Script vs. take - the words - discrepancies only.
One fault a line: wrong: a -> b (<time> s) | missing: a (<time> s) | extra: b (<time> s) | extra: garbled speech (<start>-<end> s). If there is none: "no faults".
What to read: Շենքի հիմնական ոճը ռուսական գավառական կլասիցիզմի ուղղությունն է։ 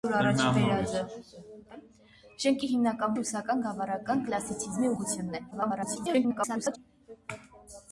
missing: ոճը (3.1 s)
extra: garbled speech (5.5-6.8 s)